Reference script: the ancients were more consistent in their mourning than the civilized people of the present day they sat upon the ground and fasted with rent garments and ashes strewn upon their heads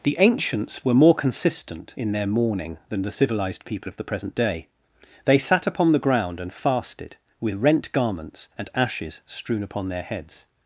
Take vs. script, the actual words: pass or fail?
pass